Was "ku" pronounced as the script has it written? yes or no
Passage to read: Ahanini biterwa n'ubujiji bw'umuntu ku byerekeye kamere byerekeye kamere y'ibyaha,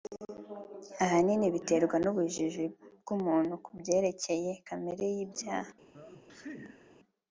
yes